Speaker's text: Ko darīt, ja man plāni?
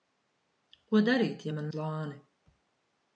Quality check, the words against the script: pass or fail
pass